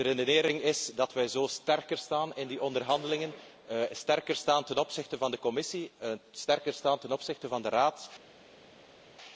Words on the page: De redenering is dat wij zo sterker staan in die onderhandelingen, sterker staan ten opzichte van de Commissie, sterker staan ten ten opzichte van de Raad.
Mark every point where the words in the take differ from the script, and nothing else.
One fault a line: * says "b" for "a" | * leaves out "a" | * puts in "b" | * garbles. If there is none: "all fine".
* leaves out "ten"